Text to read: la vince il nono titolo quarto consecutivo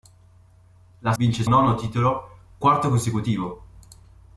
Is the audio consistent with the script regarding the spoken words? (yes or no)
yes